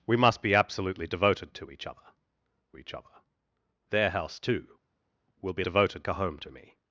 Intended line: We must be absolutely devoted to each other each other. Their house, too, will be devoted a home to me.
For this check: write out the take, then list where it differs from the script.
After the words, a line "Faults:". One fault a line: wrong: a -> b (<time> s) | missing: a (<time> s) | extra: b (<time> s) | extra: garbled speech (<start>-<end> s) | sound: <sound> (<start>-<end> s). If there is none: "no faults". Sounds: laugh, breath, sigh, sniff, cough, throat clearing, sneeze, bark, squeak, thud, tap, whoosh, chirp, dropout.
We must be absolutely devoted to each other each other. Their house, too, will be devoted a home to me.
Faults:
no faults